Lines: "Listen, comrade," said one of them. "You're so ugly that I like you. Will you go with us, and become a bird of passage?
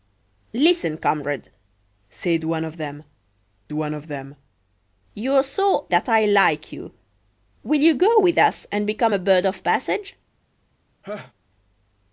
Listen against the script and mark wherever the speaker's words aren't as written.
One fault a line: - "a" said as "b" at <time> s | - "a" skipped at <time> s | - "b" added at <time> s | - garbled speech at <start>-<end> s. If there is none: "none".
- "one of them" added at 3.7 s
- "ugly" skipped at 5.9 s